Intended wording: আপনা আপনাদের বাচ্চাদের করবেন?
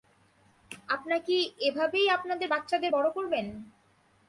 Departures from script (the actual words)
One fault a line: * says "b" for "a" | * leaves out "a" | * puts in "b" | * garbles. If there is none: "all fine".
* puts in "কি এভাবেই"
* puts in "বড়"